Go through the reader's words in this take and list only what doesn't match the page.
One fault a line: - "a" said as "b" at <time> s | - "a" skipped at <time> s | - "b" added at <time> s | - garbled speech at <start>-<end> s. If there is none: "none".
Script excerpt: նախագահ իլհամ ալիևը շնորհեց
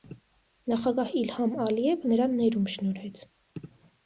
- "նրան ներում" added at 2.1 s